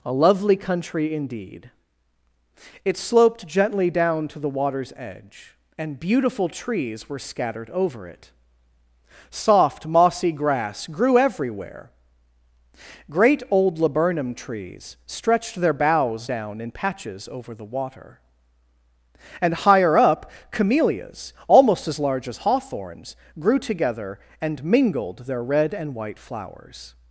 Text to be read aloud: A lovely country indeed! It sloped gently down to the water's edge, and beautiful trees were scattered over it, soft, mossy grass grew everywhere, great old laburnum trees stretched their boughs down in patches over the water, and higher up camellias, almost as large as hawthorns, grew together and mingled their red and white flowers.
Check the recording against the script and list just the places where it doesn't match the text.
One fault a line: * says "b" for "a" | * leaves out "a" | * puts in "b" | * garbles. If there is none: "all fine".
all fine